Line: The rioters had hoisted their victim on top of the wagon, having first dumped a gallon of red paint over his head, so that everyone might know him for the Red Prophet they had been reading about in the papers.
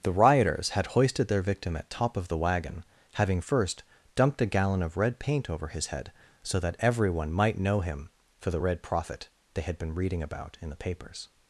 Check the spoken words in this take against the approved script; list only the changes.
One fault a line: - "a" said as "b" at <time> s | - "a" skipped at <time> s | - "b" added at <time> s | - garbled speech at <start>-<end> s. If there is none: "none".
- "on" said as "at" at 1.8 s